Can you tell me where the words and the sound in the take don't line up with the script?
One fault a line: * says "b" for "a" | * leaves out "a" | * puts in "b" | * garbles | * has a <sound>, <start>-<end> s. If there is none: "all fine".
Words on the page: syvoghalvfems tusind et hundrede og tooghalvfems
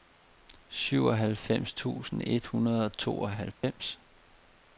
* has a dropout, 3.5-3.6 s